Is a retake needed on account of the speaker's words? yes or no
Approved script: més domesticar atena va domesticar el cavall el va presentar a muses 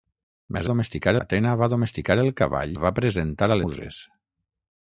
no